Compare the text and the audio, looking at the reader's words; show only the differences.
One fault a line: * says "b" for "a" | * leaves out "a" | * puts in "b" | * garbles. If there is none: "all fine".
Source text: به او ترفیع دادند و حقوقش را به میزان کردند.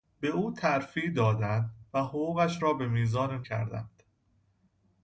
all fine